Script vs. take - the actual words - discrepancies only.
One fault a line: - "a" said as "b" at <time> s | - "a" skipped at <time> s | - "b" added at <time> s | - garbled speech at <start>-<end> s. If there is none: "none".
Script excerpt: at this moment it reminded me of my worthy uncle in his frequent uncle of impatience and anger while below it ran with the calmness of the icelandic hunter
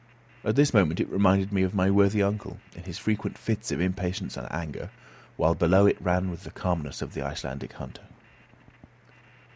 - "uncle" said as "fits" at 3.4 s